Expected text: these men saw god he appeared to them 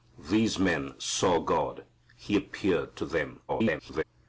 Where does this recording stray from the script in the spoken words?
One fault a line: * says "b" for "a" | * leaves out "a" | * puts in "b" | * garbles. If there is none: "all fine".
* garbles